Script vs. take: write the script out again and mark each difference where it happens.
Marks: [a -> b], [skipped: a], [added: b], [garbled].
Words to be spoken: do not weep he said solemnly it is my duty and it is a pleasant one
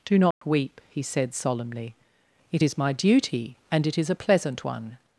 do not weep he said solemnly it is my duty and it is a pleasant one